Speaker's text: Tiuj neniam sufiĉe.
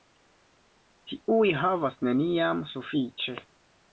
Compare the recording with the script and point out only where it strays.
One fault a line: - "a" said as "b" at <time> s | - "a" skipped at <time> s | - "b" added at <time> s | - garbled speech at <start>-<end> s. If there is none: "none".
- "havas" added at 1.6 s